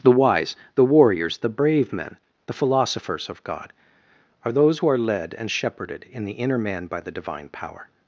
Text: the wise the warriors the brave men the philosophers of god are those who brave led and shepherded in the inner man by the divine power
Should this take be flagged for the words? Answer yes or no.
yes